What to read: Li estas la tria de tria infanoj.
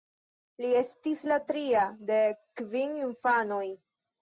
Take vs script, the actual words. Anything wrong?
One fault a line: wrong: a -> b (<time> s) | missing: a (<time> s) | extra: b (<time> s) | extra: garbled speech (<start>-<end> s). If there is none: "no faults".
wrong: estas -> estis (0.8 s)
wrong: tria -> kvin (2.6 s)